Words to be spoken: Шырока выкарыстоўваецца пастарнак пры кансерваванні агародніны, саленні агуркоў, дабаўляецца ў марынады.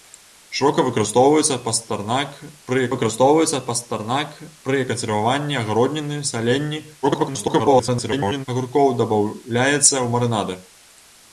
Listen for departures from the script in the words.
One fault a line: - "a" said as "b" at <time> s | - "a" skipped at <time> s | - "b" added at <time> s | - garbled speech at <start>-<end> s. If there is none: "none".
- "выкарыстоўваецца пастарнак пры" added at 2.9 s
- garbled speech at 7.0-8.5 s